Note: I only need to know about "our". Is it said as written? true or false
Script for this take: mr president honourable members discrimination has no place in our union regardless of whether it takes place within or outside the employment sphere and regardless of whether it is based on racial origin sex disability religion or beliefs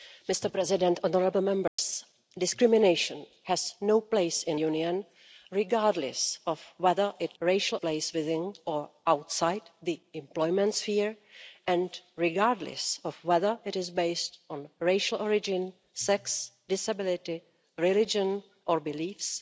false